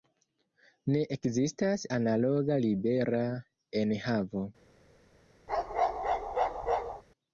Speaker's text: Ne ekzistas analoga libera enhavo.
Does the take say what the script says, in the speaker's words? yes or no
yes